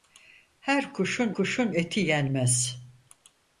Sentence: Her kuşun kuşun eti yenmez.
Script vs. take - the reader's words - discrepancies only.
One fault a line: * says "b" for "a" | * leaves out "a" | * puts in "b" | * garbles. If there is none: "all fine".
all fine